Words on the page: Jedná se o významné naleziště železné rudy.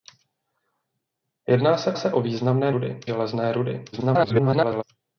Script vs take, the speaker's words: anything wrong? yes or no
yes